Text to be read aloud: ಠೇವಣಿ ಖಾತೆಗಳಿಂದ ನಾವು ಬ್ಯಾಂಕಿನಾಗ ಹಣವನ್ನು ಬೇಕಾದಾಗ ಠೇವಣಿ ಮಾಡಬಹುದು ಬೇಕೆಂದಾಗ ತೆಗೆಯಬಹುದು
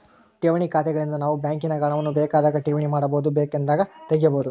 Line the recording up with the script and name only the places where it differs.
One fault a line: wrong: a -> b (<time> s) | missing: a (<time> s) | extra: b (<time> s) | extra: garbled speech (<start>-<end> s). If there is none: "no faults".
no faults